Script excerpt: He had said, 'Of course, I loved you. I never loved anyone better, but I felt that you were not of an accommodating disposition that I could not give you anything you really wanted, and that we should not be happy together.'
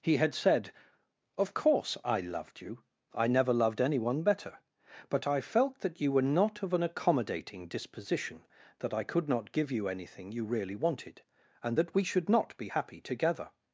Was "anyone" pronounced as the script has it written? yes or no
yes